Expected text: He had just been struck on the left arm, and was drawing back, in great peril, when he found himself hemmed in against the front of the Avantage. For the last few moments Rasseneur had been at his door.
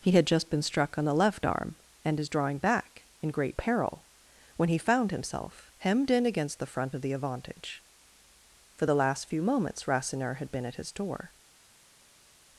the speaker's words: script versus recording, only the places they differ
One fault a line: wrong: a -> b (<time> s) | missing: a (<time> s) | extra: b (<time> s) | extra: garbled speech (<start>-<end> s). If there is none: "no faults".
wrong: was -> is (2.2 s)